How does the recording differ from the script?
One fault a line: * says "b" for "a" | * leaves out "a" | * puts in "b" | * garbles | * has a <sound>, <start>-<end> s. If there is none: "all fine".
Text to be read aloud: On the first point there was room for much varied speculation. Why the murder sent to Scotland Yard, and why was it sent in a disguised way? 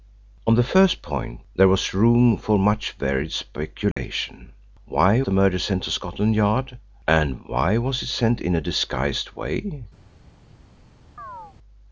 * has a dropout, 3.9-4.0 s
* has a chirp, 11.2-11.6 s